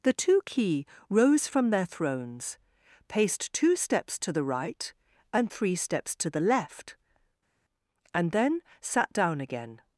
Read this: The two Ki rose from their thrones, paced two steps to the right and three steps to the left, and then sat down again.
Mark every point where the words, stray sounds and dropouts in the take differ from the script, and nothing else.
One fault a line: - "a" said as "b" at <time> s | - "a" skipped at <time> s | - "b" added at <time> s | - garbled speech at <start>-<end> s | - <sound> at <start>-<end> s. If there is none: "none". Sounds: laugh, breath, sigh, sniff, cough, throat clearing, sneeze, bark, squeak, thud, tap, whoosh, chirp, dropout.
none